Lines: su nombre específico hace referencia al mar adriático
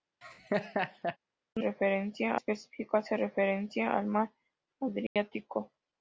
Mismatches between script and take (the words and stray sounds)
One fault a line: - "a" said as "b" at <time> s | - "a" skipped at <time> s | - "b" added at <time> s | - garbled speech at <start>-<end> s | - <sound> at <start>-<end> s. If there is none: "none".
- laugh at 0.2-1.2 s
- "nombre" said as "referencia" at 1.6 s
- dropout at 5.1-5.2 s